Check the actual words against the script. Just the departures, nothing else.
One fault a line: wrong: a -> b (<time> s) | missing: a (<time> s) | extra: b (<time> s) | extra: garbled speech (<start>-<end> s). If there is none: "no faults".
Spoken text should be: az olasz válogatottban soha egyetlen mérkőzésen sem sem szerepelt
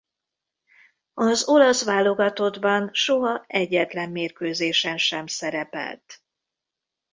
missing: sem (5.3 s)